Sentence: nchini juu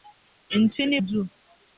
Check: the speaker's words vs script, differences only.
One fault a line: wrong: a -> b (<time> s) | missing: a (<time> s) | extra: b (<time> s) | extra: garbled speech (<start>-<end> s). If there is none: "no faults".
no faults